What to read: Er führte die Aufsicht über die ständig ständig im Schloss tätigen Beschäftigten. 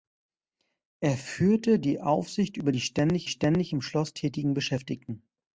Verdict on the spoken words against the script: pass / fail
pass